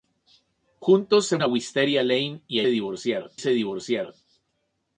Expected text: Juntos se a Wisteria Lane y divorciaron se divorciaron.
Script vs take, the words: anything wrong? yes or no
no